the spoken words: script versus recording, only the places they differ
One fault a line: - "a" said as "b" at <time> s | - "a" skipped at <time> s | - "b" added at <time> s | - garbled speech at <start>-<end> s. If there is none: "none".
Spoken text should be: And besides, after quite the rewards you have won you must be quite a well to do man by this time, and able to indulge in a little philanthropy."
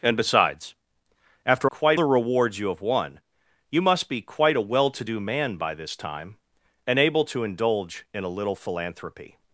none